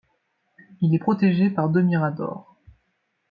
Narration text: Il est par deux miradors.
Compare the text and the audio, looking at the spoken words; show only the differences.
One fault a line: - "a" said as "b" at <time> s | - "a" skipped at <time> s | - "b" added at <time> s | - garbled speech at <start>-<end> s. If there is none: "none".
- "protégé" added at 1.0 s